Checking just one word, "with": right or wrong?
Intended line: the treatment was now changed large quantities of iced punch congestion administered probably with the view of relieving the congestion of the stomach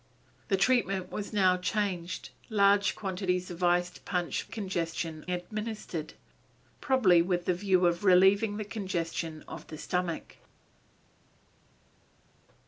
right